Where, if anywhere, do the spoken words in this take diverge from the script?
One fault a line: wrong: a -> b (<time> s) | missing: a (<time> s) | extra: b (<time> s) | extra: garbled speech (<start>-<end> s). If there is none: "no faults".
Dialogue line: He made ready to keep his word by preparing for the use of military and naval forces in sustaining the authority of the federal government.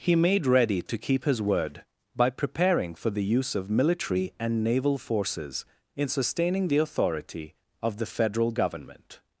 no faults